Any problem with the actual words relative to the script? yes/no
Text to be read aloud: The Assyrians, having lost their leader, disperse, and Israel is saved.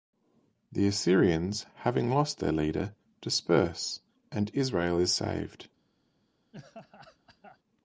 no